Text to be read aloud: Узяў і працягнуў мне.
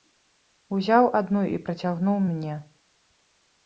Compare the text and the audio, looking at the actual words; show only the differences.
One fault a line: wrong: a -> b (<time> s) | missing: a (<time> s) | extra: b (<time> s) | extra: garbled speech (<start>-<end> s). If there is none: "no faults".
extra: адну (1.2 s)